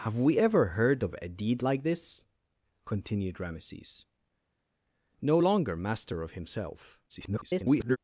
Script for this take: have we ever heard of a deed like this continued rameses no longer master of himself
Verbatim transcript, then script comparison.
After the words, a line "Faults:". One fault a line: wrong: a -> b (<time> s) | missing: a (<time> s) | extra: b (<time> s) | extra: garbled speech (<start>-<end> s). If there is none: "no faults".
have we ever heard of a deed like this continued rameses no longer master of himself [garbled]
Faults:
extra: garbled speech (7.1-8.0 s)